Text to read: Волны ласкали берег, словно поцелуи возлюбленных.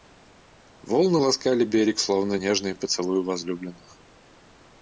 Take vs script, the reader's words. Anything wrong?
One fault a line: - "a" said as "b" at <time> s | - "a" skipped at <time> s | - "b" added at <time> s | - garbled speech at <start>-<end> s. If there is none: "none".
- "нежные" added at 2.3 s